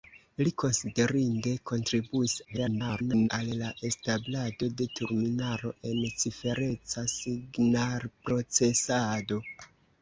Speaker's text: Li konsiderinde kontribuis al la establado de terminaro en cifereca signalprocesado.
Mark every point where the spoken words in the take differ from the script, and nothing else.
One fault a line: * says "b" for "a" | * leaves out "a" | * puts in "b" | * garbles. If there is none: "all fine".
* garbles